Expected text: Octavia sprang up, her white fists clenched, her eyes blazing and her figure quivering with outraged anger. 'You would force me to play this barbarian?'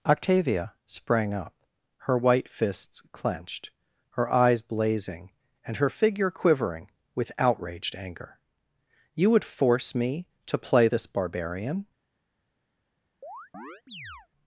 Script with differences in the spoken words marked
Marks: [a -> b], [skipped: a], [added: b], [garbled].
Octavia sprang up, her white fists clenched, her eyes blazing and her figure quivering with outraged anger. 'You would force me to play this barbarian?'